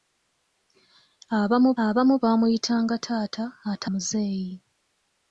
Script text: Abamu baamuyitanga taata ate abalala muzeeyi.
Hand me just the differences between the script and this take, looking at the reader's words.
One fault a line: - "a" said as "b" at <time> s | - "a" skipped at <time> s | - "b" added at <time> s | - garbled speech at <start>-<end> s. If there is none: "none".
- "abamu" added at 1.8 s
- "abalala" skipped at 3.9 s